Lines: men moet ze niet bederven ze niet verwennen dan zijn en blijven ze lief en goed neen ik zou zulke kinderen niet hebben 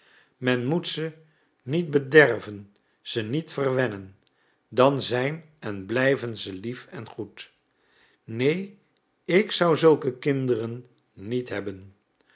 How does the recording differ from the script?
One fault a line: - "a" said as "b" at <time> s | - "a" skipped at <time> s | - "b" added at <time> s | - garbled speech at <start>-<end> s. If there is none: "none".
none